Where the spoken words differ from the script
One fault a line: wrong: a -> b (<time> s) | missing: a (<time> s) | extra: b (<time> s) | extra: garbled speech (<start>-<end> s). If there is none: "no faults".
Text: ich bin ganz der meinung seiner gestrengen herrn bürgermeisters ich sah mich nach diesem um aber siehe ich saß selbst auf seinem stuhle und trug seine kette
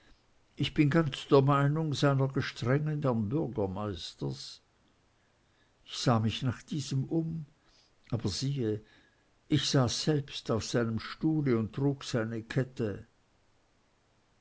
no faults